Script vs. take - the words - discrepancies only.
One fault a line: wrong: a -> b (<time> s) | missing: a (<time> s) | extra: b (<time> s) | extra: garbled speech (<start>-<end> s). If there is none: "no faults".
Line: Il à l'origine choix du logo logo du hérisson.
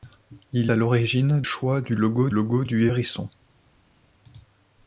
no faults